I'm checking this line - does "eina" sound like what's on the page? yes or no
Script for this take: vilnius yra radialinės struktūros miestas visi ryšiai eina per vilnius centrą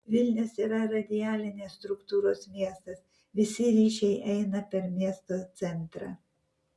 yes